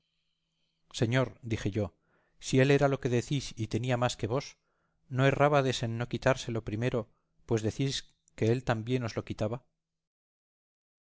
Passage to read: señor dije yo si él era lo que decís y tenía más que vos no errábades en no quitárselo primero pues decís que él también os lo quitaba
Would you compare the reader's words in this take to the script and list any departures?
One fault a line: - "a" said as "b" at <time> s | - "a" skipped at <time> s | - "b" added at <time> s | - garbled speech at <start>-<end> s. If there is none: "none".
none